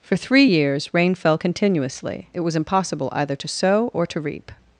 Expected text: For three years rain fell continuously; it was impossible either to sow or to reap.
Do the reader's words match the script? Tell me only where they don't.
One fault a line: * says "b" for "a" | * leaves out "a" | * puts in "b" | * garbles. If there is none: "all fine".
all fine